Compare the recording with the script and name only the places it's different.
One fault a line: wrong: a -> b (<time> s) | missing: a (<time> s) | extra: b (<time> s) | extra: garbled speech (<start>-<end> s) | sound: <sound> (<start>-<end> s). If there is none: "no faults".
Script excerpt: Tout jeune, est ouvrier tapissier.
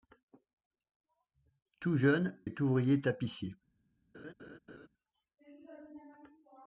sound: laugh (4.1-4.9 s)